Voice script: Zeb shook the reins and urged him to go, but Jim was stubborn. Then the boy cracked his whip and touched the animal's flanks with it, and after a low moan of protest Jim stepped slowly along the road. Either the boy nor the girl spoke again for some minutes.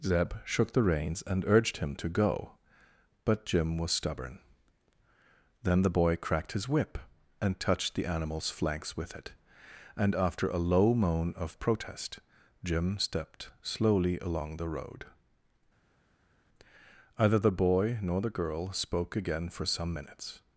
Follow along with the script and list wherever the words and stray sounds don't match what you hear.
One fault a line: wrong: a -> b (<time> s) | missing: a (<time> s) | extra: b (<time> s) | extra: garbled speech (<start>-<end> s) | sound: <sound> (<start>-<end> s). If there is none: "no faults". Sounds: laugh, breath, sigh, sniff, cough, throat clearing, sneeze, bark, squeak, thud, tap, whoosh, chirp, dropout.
no faults